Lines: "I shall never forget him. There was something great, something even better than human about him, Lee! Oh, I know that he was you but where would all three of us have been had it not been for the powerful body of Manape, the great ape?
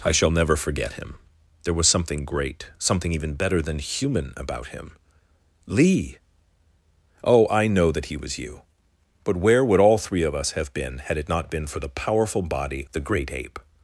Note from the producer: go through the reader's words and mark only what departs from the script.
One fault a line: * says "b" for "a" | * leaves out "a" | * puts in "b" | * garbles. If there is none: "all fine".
* leaves out "of Manape"